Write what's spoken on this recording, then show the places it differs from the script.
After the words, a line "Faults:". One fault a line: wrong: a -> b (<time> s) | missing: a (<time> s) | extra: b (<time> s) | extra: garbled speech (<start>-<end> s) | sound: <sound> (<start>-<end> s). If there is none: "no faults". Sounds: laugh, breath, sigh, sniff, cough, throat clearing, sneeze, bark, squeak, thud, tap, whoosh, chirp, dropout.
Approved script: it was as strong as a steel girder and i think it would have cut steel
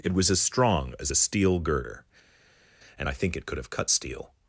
it was as strong as a steel girder and i think it could have cut steel
Faults:
wrong: would -> could (3.4 s)